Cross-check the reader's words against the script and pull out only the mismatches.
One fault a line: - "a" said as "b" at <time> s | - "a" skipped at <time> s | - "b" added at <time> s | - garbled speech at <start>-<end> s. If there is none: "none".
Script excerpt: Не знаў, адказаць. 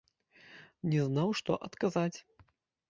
- "што" added at 1.4 s